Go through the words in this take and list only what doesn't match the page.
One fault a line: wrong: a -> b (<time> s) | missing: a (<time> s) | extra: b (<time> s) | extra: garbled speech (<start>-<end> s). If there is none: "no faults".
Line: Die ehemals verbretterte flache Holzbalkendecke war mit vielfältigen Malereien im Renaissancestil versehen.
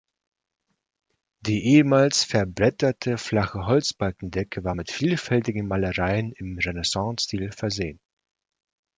no faults